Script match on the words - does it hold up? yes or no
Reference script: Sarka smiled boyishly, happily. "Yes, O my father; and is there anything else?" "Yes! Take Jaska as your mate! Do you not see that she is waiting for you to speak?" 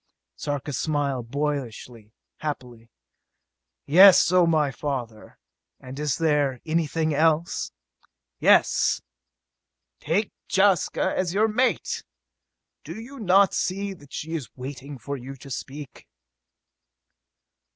yes